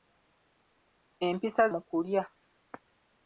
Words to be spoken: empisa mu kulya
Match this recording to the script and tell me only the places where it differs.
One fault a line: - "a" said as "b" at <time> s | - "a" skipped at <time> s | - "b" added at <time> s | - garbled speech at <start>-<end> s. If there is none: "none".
none